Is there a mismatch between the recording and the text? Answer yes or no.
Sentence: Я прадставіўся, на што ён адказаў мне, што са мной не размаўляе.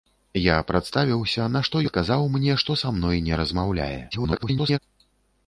yes